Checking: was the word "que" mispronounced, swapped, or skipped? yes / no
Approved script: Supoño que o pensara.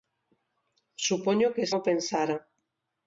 no